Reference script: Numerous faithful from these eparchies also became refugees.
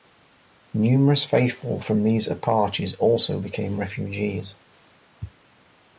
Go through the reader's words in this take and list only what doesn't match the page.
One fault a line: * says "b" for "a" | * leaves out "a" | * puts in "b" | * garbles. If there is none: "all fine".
all fine